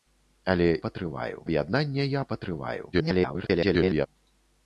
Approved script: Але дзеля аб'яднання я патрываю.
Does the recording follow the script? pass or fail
fail